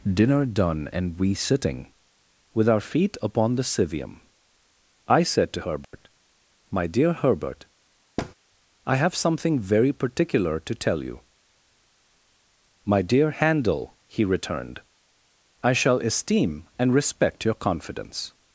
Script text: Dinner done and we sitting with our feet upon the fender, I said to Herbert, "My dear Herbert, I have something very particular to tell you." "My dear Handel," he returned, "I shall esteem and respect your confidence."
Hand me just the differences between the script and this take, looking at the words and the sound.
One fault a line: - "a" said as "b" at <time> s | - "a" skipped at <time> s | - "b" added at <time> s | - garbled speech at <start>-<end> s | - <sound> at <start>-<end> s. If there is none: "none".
- "fender" said as "civium" at 3.6 s
- dropout at 5.8-5.9 s
- thud at 8.2-8.3 s